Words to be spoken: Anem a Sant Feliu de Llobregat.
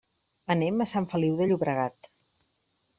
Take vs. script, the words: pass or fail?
pass